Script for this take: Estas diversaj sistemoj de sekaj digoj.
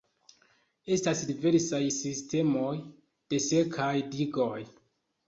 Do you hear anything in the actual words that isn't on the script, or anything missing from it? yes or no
no